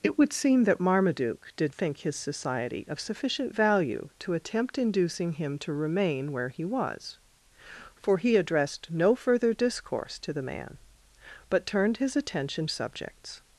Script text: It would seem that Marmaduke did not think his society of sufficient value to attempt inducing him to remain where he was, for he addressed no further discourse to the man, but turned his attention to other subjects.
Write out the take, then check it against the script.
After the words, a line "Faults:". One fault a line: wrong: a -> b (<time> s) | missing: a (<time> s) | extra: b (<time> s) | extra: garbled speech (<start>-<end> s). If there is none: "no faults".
It would seem that Marmaduke did think his society of sufficient value to attempt inducing him to remain where he was, for he addressed no further discourse to the man, but turned his attention subjects.
Faults:
missing: not (1.8 s)
missing: to other (12.7 s)